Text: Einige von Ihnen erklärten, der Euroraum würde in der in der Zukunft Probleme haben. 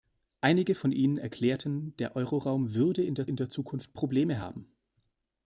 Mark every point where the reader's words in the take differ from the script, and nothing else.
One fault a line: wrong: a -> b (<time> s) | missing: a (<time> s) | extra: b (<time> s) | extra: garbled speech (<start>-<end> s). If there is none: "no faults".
no faults